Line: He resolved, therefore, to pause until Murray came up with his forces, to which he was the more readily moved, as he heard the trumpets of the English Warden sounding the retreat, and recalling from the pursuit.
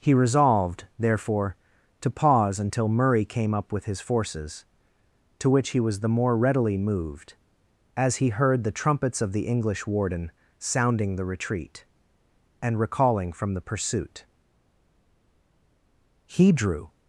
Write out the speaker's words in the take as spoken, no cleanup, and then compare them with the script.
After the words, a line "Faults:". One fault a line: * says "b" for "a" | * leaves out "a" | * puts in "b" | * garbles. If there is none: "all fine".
He resolved, therefore, to pause until Murray came up with his forces, to which he was the more readily moved, as he heard the trumpets of the English Warden sounding the retreat, and recalling from the pursuit. He drew
Faults:
* puts in "He drew"